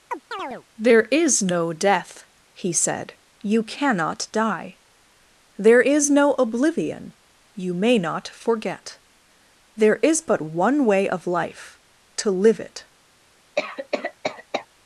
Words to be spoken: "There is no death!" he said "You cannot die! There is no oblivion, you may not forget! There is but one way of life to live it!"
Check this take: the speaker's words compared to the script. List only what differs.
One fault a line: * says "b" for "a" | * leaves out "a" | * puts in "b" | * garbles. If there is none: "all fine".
all fine